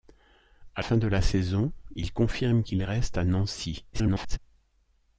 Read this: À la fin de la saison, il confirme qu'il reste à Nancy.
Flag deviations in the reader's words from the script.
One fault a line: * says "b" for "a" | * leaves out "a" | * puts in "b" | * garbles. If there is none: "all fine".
* leaves out "la"
* garbles